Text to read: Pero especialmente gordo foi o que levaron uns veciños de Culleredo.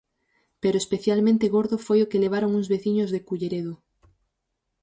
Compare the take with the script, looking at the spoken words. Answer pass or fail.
pass